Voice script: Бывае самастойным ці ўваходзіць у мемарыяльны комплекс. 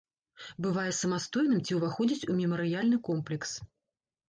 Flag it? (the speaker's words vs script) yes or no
no